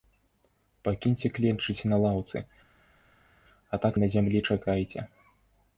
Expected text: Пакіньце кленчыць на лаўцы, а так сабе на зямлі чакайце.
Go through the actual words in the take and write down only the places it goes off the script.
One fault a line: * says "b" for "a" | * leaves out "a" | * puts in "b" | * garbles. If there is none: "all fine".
* leaves out "сабе"